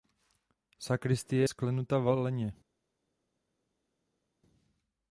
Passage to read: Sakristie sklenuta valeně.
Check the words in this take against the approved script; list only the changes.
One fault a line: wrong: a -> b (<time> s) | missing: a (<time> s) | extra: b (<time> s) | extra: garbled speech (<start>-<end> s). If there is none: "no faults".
no faults